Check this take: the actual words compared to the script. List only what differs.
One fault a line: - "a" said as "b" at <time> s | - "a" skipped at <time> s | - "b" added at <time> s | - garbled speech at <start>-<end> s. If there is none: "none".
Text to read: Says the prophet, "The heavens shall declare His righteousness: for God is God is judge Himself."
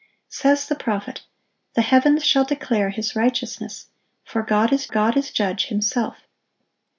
none